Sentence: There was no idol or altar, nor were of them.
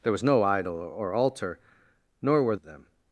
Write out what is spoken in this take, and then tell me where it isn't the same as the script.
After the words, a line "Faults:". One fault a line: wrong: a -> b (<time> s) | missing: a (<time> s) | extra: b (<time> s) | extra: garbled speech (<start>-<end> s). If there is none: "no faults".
There was no idol or altar, nor were of them.
Faults:
no faults